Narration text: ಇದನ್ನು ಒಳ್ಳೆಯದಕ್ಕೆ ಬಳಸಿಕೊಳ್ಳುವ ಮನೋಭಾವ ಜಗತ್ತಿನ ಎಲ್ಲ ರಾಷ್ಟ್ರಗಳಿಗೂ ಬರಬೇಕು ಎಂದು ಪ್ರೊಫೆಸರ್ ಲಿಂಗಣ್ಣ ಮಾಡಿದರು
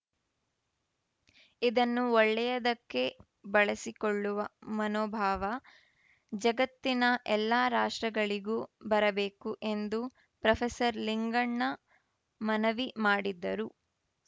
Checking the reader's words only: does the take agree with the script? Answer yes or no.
no